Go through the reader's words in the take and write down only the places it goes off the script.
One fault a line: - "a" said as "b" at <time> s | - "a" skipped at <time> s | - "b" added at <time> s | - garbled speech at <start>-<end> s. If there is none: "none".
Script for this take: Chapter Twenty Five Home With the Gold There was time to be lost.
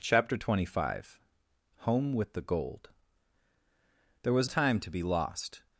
none